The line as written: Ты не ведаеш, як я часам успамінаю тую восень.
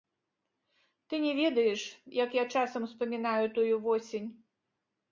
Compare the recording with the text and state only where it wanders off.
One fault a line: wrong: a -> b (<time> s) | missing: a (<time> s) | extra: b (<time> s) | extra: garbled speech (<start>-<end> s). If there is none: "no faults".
no faults